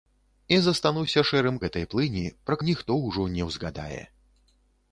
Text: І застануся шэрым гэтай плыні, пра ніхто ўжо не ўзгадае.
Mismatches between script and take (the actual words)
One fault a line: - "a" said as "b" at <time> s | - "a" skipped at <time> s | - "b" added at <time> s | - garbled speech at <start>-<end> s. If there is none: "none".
none